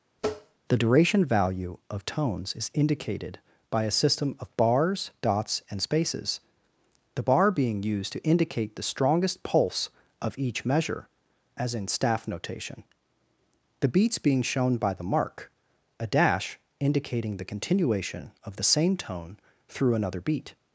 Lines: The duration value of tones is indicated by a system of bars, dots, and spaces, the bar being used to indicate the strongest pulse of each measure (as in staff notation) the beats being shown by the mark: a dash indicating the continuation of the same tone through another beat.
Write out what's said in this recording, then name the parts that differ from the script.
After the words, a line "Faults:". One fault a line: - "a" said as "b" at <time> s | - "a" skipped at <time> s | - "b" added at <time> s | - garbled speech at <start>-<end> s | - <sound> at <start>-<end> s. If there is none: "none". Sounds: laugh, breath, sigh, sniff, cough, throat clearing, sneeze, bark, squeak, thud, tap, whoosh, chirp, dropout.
The duration value of tones is indicated by a system of bars, dots, and spaces, the bar being used to indicate the strongest pulse of each measure (as in staff notation) the beats being shown by the mark: a dash indicating the continuation of the same tone through another beat.
Faults:
- tap at 0.2-0.6 s